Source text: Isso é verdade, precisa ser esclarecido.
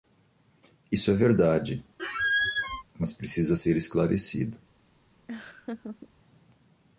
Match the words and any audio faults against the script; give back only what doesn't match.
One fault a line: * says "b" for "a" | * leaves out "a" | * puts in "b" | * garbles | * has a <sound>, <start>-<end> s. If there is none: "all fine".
* has a squeak, 2.0-2.8 s
* puts in "mas"
* has a laugh, 5.3-6.1 s